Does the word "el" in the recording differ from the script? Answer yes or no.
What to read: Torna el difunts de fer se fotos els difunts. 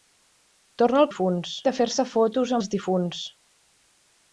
no